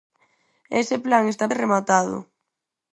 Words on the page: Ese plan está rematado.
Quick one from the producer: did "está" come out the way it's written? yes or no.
yes